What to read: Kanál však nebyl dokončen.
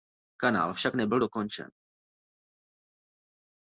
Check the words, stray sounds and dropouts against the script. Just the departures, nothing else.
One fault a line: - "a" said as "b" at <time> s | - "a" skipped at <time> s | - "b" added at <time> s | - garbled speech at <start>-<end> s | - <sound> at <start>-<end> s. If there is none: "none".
none